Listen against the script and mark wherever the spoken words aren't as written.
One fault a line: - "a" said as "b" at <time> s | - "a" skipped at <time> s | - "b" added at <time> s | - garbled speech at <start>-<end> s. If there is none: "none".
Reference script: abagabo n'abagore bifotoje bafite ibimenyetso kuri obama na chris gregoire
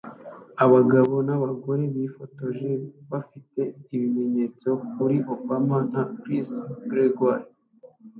none